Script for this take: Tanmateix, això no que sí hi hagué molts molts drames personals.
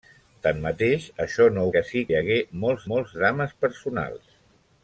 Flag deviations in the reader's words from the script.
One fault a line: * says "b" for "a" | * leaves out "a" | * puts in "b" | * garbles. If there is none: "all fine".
all fine